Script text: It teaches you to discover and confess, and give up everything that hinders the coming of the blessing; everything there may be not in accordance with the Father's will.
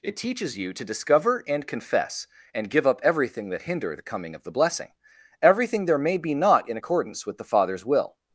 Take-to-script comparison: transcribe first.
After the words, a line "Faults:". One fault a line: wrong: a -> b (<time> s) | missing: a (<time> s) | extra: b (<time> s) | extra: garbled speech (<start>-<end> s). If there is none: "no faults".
It teaches you to discover and confess, and give up everything that hinder the coming of the blessing; everything there may be not in accordance with the Father's will.
Faults:
wrong: hinders -> hinder (3.6 s)